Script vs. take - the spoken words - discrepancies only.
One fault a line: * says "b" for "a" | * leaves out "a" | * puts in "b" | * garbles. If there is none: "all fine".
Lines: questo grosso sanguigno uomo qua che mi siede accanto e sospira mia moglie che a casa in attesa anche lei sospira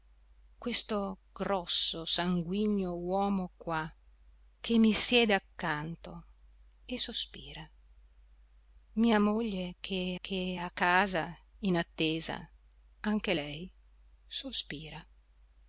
* puts in "che"